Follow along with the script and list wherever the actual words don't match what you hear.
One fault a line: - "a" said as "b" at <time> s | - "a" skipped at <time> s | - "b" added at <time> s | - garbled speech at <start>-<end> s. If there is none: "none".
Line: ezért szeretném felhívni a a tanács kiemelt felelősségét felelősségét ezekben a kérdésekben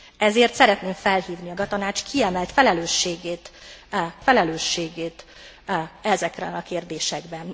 none